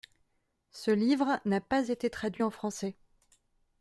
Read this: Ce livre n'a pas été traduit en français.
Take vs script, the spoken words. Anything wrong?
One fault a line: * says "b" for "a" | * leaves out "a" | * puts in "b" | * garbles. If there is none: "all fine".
all fine